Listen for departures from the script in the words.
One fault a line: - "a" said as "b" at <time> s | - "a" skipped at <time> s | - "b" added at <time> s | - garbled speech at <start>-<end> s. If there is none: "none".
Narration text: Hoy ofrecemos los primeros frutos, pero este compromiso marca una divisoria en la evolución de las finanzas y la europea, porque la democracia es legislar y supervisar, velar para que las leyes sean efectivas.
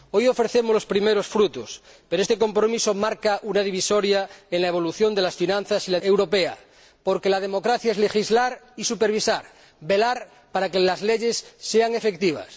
none